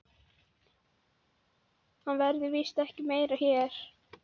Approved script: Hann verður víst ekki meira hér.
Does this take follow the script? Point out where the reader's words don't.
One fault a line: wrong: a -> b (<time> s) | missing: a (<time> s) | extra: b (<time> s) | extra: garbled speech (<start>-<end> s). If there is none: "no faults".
no faults